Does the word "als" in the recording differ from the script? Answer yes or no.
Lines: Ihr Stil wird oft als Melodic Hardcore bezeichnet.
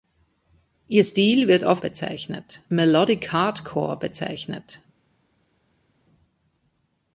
yes